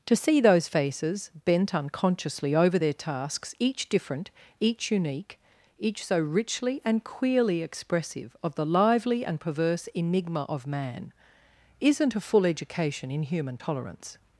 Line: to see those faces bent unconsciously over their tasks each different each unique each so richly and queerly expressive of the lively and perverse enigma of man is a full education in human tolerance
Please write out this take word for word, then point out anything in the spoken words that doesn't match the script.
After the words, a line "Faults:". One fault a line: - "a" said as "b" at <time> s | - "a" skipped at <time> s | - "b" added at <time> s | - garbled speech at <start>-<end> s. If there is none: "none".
to see those faces bent unconsciously over their tasks each different each unique each so richly and queerly expressive of the lively and perverse enigma of man isn't a full education in human tolerance
Faults:
- "is" said as "isn't" at 11.8 s